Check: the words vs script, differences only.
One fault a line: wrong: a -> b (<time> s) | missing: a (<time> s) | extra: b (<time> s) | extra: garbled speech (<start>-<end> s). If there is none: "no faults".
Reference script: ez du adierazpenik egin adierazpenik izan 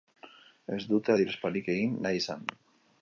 wrong: du -> dute (0.9 s)
wrong: adierazpenik -> nahi (2.1 s)